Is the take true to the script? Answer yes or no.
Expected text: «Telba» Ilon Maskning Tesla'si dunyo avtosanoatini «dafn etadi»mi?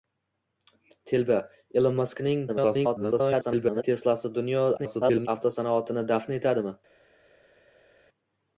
no